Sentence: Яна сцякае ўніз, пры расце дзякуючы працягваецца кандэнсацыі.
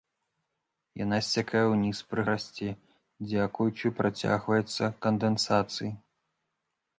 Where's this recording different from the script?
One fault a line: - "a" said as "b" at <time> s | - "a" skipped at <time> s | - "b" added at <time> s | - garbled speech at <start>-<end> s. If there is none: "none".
none